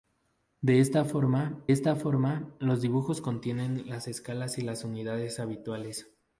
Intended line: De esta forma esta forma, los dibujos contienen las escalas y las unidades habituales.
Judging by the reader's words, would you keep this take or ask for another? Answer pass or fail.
pass